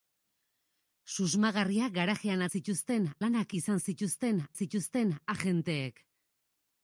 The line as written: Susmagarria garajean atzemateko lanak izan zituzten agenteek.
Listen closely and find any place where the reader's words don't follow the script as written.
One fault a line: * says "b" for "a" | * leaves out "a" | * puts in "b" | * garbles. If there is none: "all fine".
* says "zituzten" for "atzemateko"
* puts in "zituzten"